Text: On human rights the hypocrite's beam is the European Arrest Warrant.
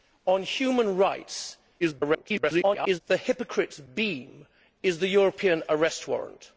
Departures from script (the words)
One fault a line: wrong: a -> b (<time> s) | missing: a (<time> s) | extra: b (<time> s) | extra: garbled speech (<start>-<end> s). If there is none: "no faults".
extra: garbled speech (1.8-3.0 s)